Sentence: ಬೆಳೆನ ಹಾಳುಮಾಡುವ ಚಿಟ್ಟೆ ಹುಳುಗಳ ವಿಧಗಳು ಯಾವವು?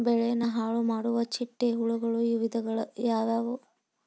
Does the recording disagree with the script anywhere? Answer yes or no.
no